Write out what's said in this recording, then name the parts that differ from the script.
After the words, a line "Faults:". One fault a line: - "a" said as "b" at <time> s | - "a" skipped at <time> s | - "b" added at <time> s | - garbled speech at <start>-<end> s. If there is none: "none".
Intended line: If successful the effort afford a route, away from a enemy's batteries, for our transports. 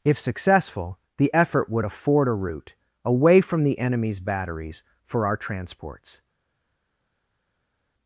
If successful the effort would afford a route, away from the enemy's batteries, for our transports.
Faults:
- "would" added at 1.7 s
- "a" said as "the" at 3.6 s